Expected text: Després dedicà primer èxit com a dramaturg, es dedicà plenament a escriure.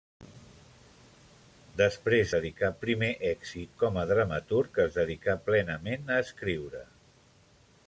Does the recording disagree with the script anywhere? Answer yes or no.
no